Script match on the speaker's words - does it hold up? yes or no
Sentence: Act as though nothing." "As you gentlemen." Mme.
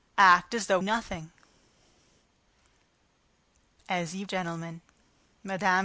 yes